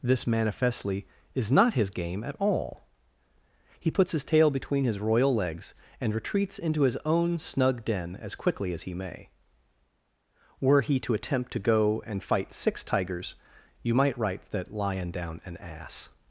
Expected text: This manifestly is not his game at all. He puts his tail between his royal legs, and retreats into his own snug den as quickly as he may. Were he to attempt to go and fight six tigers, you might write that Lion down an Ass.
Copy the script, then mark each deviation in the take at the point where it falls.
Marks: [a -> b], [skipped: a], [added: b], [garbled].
This manifestly is not his game at all. He puts his tail between his royal legs, and retreats into his own snug den as quickly as he may. Were he to attempt to go and fight six tigers, you might write that Lion down an Ass.